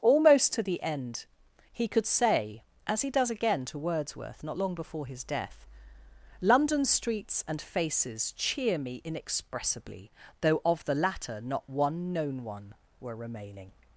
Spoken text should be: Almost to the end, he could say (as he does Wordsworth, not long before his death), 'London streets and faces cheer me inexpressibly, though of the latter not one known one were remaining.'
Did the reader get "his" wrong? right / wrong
right